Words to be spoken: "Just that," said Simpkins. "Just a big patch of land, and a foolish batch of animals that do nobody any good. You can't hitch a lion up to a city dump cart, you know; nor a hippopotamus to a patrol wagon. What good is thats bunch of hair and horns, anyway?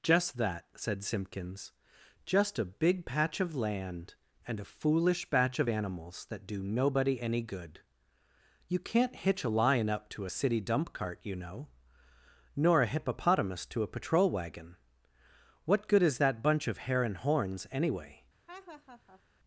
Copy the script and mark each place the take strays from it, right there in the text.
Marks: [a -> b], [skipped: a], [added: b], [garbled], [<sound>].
"Just that," said Simpkins. "Just a big patch of land, and a foolish batch of animals that do nobody any good. You can't hitch a lion up to a city dump cart, you know; nor a hippopotamus to a patrol wagon. What good is [thats -> that] bunch of hair and horns, anyway? [laugh]